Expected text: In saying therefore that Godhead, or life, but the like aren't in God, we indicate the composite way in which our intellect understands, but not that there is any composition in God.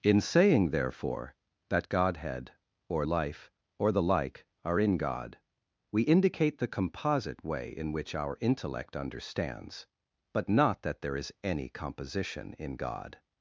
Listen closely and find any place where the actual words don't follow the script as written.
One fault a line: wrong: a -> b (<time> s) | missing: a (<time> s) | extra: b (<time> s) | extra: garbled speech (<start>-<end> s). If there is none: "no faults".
wrong: but -> or (3.8 s)
wrong: aren't -> are (4.6 s)